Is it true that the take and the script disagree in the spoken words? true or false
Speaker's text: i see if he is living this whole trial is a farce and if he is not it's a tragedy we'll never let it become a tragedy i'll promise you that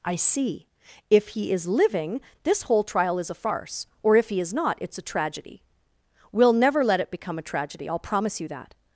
true